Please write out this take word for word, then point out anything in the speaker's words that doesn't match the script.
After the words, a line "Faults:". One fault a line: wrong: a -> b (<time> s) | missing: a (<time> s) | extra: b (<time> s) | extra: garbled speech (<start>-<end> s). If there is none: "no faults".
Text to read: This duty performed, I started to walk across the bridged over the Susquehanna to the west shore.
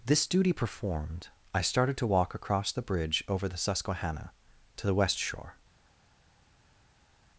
This duty performed, I started to walk across the bridge over the Susquehanna to the west shore.
Faults:
wrong: bridged -> bridge (2.8 s)